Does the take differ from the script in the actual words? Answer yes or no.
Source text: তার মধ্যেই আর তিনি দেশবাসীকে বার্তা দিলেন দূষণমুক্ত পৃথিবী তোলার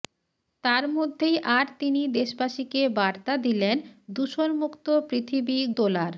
no